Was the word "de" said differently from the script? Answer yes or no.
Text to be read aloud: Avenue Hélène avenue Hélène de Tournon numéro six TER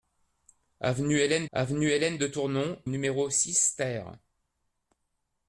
no